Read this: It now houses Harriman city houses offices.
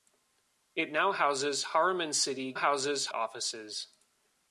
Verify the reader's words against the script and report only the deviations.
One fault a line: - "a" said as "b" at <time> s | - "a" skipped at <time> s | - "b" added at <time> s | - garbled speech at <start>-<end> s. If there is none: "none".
none